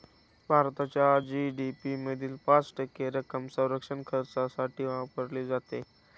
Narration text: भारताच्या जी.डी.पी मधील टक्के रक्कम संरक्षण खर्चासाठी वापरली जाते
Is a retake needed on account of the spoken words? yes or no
yes